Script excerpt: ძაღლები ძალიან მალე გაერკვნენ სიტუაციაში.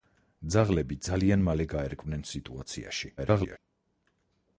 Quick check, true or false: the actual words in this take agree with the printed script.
false